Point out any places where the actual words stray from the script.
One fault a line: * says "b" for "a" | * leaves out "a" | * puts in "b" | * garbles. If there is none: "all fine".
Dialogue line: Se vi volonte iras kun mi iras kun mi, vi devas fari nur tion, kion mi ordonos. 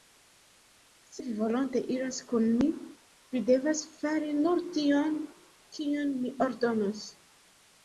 * leaves out "iras kun mi"